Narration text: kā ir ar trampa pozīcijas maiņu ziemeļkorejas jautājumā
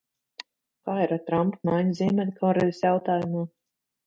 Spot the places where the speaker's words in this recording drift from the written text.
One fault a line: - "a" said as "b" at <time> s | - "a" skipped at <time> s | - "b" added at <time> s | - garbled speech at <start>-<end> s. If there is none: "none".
- "pozīcijas" skipped at 1.6 s